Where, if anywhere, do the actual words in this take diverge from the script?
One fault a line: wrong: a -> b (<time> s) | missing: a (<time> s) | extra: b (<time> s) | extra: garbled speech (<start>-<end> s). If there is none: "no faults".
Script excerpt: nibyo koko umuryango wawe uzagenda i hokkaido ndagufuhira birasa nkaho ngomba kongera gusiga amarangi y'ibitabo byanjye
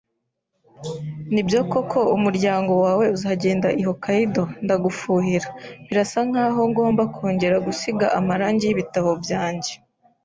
no faults